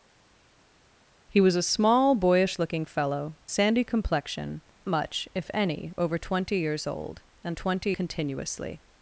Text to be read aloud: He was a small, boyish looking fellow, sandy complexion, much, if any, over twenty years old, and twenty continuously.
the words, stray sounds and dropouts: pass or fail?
pass